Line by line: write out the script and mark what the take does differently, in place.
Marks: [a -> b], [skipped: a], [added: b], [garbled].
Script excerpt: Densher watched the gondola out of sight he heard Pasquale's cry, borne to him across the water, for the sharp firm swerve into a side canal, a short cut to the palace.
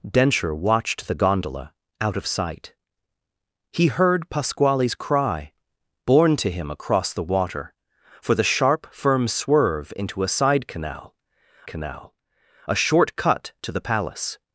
Densher watched the gondola out of sight he heard Pasquale's cry, borne to him across the water, for the sharp firm swerve into a side canal, [added: canal] a short cut to the palace.